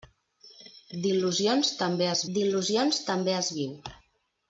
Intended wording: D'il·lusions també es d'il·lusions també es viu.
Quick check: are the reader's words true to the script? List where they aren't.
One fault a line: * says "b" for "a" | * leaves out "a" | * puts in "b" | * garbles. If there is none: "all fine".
all fine